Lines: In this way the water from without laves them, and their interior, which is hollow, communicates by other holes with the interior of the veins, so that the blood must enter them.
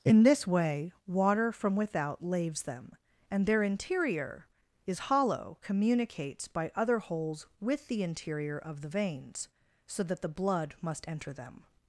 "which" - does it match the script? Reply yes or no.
no